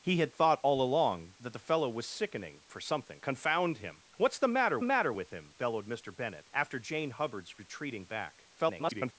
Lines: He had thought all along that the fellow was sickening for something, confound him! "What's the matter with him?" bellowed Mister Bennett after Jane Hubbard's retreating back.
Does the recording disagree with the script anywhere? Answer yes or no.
yes